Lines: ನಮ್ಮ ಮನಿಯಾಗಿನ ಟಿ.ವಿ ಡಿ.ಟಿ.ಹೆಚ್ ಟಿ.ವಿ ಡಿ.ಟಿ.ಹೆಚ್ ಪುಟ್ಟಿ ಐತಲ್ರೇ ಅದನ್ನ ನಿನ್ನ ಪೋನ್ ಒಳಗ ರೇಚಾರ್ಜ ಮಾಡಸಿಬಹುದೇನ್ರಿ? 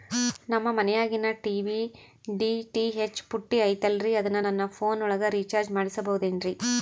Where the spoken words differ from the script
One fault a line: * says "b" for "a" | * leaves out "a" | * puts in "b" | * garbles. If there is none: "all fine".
* leaves out "ಟಿ.ವಿ ಡಿ.ಟಿ.ಹೆಚ್"
* says "ನನ್ನ" for "ನಿನ್ನ"